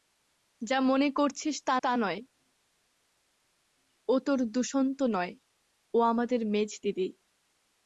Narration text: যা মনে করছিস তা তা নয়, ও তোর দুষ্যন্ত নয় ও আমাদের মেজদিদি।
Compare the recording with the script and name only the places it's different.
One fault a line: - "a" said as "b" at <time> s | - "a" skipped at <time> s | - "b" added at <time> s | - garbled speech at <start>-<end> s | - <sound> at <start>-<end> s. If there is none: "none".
none